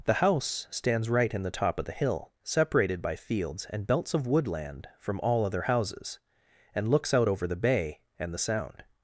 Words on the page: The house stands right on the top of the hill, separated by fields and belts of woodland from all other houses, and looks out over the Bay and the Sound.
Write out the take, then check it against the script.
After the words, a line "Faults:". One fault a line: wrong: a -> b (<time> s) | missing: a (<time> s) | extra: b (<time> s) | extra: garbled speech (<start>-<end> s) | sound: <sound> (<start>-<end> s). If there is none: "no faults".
The house stands right in the top of the hill, separated by fields and belts of woodland from all other houses, and looks out over the Bay and the Sound.
Faults:
wrong: on -> in (1.3 s)